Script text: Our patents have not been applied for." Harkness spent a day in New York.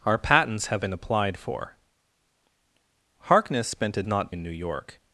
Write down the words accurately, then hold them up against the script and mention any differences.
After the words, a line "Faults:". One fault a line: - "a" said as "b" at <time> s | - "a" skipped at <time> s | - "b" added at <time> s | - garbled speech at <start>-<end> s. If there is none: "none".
Our patents have been applied for." Harkness spent a not in New York.
Faults:
- "not" skipped at 0.8 s
- "day" said as "not" at 4.1 s